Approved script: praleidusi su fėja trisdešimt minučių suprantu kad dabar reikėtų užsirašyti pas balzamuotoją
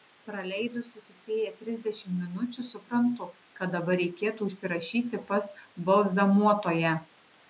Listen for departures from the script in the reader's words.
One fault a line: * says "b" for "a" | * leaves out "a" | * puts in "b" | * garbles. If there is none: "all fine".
all fine